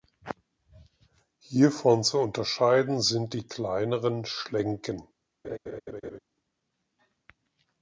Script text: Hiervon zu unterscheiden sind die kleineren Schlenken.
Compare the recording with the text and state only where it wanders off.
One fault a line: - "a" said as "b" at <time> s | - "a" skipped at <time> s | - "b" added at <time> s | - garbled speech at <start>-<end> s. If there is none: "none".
none